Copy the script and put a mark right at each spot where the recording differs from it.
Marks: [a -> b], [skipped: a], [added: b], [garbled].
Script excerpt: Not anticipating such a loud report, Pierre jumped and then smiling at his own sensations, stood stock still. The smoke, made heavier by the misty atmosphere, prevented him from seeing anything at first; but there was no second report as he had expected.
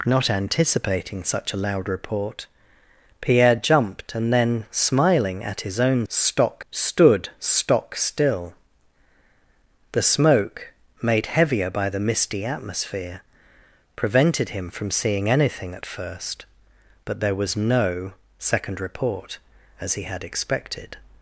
Not anticipating such a loud report, Pierre jumped and then smiling at his own [sensations, -> stock] stood stock still. The smoke, made heavier by the misty atmosphere, prevented him from seeing anything at first; but there was no second report as he had expected.